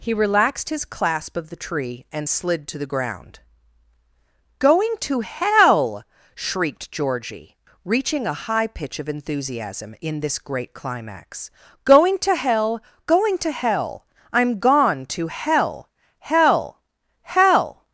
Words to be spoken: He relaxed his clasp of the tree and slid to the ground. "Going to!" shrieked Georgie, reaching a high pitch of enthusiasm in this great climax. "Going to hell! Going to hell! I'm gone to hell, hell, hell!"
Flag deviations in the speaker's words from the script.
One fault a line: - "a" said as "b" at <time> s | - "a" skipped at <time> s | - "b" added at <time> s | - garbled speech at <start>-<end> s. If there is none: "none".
- "hell" added at 5.2 s